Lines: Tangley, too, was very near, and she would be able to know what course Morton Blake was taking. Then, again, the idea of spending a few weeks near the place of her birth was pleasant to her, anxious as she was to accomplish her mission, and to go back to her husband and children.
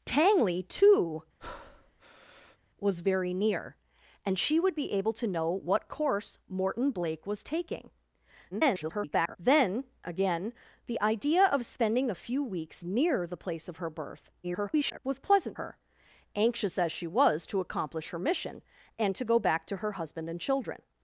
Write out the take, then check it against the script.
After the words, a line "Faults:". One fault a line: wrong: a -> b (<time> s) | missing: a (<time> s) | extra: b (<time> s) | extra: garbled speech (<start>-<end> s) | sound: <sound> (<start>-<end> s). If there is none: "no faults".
Tangley, too, was very near, and she would be able to know what course Morton Blake was taking. [garbled] Then, again, the idea of spending a few weeks near the place of her birth [garbled] was pleasant her, anxious as she was to accomplish her mission, and to go back to her husband and children.
Faults:
sound: breath (1.4-2.6 s)
extra: garbled speech (8.5-9.4 s)
extra: garbled speech (14.4-15.0 s)
missing: to (15.6 s)